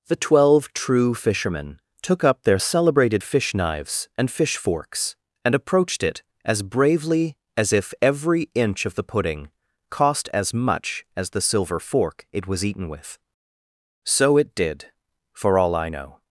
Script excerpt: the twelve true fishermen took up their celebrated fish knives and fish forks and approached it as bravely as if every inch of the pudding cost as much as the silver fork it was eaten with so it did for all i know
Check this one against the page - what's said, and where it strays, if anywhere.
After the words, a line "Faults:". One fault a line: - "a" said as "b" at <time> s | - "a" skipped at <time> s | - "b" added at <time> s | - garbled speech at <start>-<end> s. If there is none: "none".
the twelve true fishermen took up their celebrated fish knives and fish forks and approached it as bravely as if every inch of the pudding cost as much as the silver fork it was eaten with so it did for all i know
Faults:
none